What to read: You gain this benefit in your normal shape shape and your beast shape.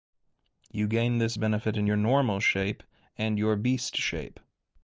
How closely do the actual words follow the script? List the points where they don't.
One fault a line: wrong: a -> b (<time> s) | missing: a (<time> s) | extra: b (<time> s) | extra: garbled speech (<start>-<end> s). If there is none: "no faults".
missing: shape (2.8 s)